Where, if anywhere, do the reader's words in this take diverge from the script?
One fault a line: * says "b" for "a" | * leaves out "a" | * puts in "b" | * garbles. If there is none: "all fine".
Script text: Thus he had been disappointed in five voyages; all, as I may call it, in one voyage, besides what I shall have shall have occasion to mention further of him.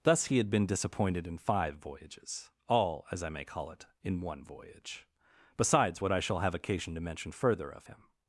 * leaves out "shall have"